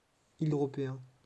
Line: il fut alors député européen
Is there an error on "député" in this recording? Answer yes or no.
yes